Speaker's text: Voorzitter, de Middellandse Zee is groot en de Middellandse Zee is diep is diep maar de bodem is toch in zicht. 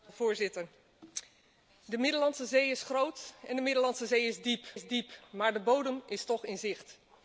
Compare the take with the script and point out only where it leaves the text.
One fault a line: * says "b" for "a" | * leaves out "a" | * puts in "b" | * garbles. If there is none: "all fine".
all fine